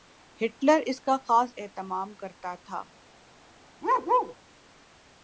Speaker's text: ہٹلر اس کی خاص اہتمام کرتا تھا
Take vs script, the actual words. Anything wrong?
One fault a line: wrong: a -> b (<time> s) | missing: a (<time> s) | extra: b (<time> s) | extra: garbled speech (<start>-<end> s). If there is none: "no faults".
wrong: کی -> کا (1.0 s)